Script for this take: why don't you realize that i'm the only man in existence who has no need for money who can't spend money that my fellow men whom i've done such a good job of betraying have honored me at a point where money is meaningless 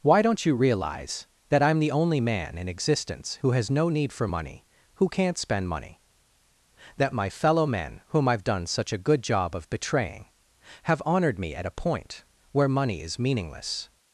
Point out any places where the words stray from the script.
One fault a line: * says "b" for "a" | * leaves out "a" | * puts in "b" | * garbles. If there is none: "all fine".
all fine